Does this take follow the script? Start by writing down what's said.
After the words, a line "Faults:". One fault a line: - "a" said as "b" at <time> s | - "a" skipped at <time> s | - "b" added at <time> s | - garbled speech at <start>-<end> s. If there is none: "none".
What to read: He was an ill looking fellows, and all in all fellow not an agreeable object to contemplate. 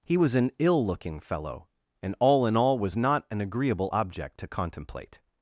He was an ill looking fellow, and all in all was not an agreeable object to contemplate.
Faults:
- "fellows" said as "fellow" at 1.2 s
- "fellow" said as "was" at 2.8 s